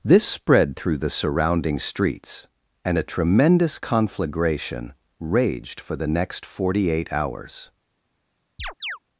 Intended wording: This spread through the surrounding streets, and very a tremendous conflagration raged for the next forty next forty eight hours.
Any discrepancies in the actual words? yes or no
yes